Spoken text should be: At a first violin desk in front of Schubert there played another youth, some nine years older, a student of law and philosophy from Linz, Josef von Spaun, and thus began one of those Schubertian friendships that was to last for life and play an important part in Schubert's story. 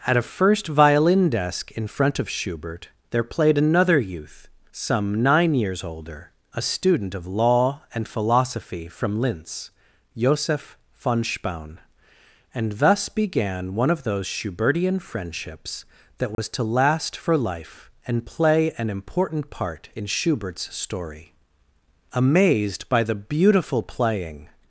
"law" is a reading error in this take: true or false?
false